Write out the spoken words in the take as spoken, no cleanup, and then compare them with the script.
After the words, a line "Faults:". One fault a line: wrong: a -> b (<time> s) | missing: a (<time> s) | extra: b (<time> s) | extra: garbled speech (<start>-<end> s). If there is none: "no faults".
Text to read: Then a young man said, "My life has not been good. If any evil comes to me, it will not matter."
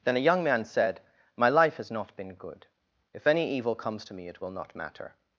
Then a young man said, "My life has not been good. If any evil comes to me, it will not matter."
Faults:
no faults